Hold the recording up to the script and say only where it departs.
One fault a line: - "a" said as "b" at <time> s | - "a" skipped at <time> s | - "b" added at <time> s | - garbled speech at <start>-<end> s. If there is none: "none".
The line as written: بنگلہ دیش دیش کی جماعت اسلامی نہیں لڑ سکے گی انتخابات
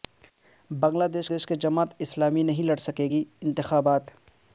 none